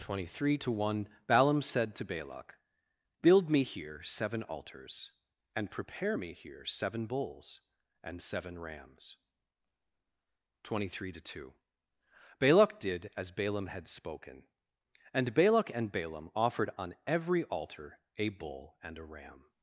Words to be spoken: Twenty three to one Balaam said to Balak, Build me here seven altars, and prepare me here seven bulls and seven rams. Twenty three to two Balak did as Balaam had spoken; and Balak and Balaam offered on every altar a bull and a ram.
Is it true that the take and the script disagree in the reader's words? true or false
false